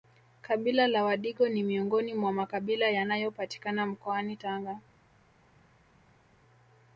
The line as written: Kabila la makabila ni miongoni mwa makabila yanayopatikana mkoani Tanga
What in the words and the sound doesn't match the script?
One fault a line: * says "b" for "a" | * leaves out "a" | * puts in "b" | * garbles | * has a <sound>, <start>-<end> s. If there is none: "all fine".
* says "wadigo" for "makabila"